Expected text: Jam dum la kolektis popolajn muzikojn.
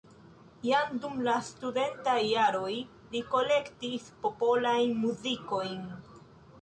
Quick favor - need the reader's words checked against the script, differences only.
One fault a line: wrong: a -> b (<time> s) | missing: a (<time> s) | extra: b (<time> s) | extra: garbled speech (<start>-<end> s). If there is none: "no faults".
extra: studentaj jaroj li (1.5 s)